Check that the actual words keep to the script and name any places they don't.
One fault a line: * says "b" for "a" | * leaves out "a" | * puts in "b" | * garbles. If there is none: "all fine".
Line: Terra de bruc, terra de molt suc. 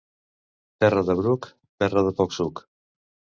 * says "poc" for "molt"